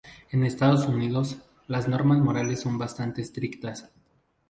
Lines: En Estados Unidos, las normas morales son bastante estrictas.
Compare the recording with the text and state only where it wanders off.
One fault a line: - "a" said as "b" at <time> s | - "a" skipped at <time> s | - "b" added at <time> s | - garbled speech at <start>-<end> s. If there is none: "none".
none